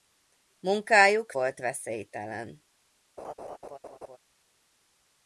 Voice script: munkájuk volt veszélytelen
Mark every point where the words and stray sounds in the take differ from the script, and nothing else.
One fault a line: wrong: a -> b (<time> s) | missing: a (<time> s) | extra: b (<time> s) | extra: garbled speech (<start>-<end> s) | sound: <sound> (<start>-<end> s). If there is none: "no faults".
sound: laugh (3.2-4.2 s)